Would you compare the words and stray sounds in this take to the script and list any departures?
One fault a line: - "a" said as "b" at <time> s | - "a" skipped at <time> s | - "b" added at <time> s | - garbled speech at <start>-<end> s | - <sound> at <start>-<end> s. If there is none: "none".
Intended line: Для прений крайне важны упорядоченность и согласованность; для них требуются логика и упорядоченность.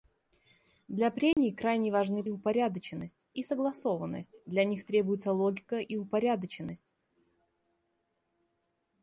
- dropout at 1.3-1.4 s